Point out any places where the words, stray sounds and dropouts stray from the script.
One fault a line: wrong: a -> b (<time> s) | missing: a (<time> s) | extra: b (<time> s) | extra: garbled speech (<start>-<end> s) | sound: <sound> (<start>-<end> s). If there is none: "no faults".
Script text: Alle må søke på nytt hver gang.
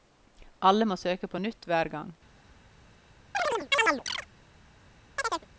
sound: chirp (3.3-4.3 s)
sound: chirp (5.2-5.5 s)